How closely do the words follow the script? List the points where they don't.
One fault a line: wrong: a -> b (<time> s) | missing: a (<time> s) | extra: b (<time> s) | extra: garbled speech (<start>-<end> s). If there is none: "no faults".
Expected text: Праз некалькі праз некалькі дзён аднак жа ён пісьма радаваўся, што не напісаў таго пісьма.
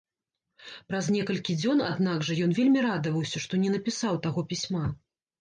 missing: праз некалькі (1.6 s)
wrong: пісьма -> вельмі (2.6 s)